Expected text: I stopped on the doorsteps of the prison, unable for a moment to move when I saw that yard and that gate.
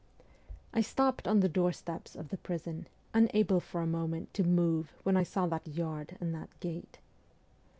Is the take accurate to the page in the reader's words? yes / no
yes